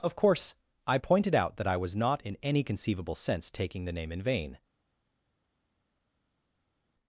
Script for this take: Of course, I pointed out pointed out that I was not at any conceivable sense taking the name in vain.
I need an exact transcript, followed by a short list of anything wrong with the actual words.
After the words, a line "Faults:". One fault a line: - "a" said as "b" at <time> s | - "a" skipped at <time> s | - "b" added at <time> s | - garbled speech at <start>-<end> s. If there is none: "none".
Of course, I pointed out that I was not in any conceivable sense taking the name in vain.
Faults:
- "pointed out" skipped at 1.6 s
- "at" said as "in" at 2.2 s